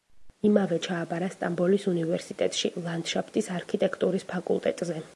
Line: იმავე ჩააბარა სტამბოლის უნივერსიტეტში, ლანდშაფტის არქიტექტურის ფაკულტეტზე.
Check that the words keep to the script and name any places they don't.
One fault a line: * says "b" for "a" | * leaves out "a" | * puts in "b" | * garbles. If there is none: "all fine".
all fine